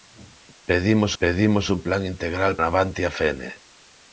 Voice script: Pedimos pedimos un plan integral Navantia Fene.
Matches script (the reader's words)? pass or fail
pass